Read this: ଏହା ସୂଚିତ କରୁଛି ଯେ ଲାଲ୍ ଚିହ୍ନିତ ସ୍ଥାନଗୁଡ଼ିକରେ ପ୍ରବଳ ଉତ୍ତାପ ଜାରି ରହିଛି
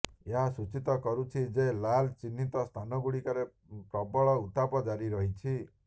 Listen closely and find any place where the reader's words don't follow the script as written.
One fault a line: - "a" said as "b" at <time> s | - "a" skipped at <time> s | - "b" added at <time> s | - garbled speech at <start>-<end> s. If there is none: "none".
none